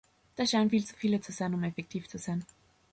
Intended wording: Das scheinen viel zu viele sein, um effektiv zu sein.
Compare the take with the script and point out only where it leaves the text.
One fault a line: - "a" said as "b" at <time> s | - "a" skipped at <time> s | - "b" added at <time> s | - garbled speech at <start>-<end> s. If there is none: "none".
- "zu" added at 1.2 s